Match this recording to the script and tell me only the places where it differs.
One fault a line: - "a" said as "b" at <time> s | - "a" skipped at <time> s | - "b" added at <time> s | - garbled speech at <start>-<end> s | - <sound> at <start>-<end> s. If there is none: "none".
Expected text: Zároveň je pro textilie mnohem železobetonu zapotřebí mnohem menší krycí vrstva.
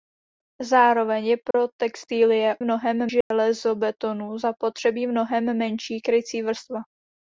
- dropout at 1.5-1.5 s
- dropout at 3.2-3.3 s